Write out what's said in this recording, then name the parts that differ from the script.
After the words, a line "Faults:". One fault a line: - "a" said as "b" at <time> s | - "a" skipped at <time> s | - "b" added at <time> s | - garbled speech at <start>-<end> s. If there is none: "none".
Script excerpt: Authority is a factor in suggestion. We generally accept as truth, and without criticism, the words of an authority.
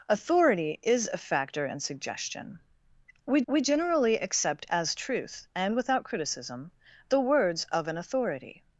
Authority is a factor in suggestion. We we generally accept as truth, and without criticism, the words of an authority.
Faults:
- "we" added at 3.5 s